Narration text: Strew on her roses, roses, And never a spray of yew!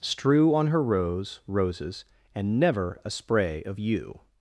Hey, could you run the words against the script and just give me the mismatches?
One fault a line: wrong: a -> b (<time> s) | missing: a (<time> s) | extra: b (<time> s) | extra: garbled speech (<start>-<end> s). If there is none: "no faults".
wrong: roses -> rose (0.8 s)